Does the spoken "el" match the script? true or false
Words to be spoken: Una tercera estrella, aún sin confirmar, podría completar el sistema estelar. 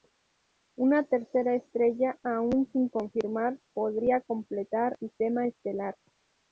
false